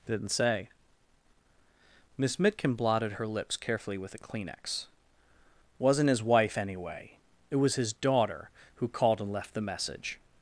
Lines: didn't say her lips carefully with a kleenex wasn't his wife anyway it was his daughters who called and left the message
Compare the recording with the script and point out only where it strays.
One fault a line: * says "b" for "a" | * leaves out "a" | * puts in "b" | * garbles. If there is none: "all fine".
* puts in "miss mitkin blotted"
* says "daughter" for "daughters"